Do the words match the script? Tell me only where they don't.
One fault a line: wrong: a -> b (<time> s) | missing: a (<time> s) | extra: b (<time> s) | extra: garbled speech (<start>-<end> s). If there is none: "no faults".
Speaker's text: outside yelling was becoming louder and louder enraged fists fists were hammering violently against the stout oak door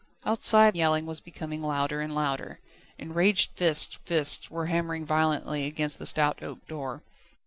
no faults